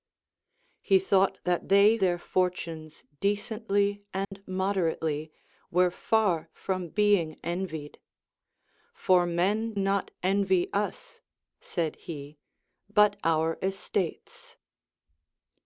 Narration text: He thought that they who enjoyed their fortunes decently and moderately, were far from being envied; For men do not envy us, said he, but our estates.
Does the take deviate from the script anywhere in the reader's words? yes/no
yes